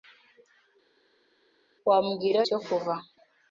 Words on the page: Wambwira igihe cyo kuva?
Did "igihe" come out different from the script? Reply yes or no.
yes